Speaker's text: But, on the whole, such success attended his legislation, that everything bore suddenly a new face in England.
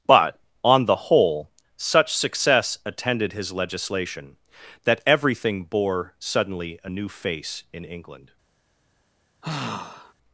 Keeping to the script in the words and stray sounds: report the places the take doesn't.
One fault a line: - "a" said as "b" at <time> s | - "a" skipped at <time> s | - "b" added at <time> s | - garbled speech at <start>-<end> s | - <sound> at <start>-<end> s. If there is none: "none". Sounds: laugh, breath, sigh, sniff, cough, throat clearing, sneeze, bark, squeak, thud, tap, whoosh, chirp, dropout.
- sigh at 9.4-10.1 s